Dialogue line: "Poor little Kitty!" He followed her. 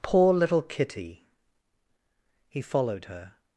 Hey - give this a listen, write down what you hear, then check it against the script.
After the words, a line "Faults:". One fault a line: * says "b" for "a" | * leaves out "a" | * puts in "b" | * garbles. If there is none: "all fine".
"Poor little Kitty!" He followed her.
Faults:
all fine